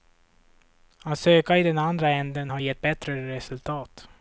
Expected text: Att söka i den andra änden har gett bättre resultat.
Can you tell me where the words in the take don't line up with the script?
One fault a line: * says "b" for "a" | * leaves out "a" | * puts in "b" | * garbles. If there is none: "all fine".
all fine